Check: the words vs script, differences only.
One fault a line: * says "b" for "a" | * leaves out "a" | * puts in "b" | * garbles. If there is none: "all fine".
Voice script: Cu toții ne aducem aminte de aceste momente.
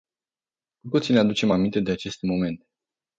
all fine